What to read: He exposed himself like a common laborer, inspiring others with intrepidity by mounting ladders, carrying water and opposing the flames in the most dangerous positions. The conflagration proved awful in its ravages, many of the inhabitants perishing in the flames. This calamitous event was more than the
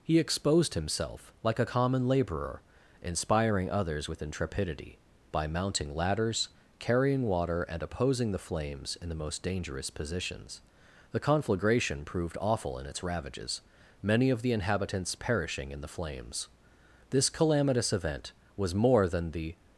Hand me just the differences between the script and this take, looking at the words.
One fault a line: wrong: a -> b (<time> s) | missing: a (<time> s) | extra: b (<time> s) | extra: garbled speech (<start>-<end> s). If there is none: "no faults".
no faults